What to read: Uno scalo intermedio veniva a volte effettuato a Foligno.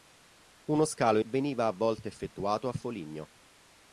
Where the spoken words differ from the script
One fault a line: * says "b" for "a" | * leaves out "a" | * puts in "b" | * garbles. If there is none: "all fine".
* leaves out "intermedio"